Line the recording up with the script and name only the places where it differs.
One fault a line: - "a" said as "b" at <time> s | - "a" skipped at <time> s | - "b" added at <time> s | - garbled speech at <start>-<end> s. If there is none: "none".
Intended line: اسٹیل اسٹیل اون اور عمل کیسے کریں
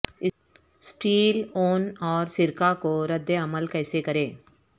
- "اسٹیل" skipped at 1.4 s
- "سرکہ کو رد" added at 2.4 s